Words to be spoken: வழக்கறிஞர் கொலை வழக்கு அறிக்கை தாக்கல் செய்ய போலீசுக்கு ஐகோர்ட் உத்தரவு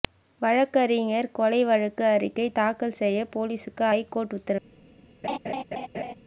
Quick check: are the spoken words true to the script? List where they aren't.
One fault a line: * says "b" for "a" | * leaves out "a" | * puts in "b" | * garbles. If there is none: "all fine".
all fine